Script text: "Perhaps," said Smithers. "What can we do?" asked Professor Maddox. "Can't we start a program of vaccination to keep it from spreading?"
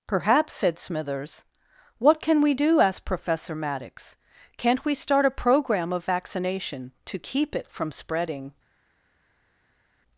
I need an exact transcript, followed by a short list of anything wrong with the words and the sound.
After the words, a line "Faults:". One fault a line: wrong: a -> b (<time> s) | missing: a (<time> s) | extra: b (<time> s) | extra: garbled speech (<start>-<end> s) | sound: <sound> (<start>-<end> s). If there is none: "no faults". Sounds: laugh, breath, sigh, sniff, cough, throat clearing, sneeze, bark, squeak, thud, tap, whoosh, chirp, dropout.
"Perhaps," said Smithers. "What can we do?" asked Professor Maddox. "Can't we start a program of vaccination to keep it from spreading?"
Faults:
no faults